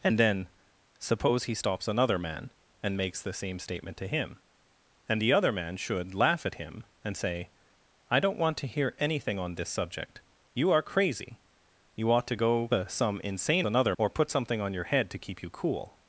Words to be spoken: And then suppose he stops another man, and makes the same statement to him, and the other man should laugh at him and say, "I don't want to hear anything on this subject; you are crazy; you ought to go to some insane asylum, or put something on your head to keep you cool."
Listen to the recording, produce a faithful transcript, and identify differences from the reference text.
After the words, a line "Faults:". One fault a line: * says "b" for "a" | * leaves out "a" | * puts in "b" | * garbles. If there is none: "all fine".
And then suppose he stops another man, and makes the same statement to him, and the other man should laugh at him and say, "I don't want to hear anything on this subject; you are crazy; you ought to go to some insane another, or put something on your head to keep you cool."
Faults:
* says "another" for "asylum"